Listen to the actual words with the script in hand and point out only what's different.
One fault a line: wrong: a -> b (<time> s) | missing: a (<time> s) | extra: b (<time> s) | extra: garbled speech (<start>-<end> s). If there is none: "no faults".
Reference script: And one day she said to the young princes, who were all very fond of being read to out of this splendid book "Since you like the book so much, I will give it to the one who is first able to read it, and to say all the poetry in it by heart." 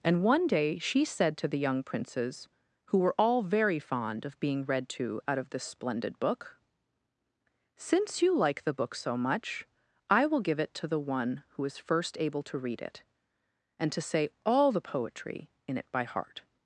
no faults